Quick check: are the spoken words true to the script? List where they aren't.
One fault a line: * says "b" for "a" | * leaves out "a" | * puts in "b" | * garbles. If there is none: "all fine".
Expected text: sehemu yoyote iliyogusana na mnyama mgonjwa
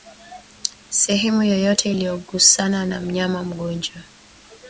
all fine